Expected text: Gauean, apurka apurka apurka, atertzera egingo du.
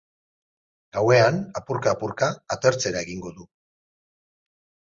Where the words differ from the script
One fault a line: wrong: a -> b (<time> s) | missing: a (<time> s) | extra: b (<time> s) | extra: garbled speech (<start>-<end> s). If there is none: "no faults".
missing: apurka (2.3 s)